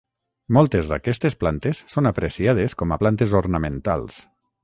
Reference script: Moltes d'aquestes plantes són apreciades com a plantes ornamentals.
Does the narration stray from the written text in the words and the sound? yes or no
no